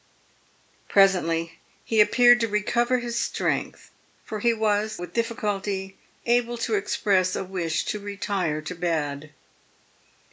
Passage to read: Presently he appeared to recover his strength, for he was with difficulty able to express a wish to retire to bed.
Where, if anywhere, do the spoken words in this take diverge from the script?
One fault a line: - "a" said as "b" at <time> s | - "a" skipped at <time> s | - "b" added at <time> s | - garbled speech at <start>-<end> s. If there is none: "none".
none